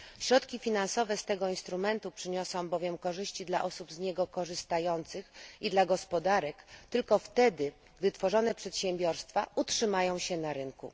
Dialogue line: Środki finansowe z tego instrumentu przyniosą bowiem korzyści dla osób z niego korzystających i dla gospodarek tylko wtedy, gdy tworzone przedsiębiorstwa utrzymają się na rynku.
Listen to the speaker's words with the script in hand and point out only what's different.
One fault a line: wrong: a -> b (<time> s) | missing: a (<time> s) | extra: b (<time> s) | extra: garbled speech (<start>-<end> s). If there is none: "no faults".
no faults